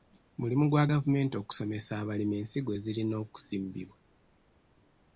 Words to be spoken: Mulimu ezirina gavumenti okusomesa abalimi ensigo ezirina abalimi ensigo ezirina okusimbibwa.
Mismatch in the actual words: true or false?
true